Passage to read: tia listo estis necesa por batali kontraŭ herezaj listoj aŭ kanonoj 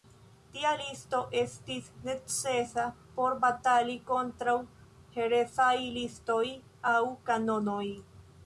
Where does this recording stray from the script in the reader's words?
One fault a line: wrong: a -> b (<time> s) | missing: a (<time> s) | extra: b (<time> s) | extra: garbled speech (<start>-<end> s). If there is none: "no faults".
no faults